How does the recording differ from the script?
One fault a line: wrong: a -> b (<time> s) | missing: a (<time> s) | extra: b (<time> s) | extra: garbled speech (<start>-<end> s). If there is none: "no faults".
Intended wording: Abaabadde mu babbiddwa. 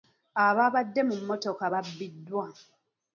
extra: mmotoka (1.2 s)